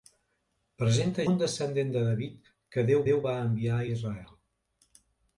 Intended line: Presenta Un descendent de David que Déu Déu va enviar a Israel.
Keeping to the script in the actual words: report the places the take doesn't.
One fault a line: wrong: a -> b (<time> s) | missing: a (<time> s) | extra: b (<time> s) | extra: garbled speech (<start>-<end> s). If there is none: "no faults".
no faults